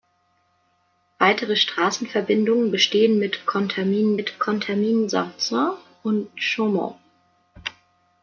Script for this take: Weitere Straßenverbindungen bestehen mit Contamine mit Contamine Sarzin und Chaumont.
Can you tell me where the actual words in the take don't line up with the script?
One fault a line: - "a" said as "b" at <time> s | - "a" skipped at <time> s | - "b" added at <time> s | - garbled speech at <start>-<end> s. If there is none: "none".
none